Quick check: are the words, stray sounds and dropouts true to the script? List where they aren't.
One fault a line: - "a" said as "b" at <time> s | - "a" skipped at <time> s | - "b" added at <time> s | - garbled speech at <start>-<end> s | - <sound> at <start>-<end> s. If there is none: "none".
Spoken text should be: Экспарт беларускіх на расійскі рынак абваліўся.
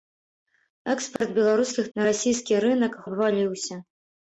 - dropout at 1.2-1.2 s